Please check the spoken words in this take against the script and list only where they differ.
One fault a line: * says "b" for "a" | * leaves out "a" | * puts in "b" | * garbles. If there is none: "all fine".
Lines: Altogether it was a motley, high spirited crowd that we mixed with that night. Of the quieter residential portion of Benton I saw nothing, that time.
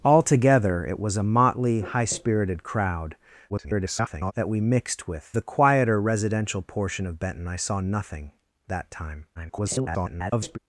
* garbles
* leaves out "that night Of"
* garbles